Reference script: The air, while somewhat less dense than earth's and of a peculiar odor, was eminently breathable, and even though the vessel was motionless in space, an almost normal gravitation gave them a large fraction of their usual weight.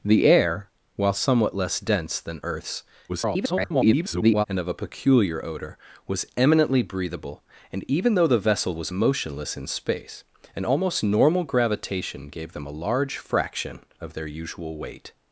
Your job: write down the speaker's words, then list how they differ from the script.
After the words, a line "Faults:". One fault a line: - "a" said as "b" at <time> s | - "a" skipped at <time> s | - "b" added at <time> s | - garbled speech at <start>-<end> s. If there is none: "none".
The air, while somewhat less dense than earth's [garbled] and of a peculiar odor, was eminently breathable, and even though the vessel was motionless in space, an almost normal gravitation gave them a large fraction of their usual weight.
Faults:
- garbled speech at 3.1-4.5 s